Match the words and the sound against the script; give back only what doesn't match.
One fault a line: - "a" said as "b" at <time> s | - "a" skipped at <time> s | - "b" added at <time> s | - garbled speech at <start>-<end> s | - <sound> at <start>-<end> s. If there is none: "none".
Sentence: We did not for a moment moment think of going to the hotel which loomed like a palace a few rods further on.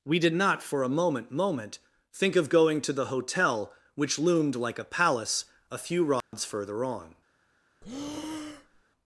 - dropout at 6.2-6.3 s
- breath at 7.8-8.8 s